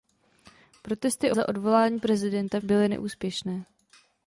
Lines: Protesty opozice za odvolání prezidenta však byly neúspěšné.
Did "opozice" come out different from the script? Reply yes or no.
yes